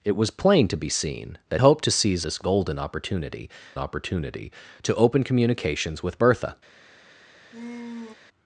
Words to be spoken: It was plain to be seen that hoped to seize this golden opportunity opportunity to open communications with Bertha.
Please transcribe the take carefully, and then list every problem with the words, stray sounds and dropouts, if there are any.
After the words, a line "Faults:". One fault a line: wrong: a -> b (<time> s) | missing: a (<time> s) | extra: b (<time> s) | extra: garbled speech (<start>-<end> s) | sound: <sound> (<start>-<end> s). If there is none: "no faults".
It was plain to be seen that hoped to seize this golden opportunity opportunity to open communications with Bertha.
Faults:
sound: sigh (7.5-8.1 s)